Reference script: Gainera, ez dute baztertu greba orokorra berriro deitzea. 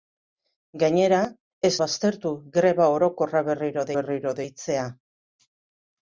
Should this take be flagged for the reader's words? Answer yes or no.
yes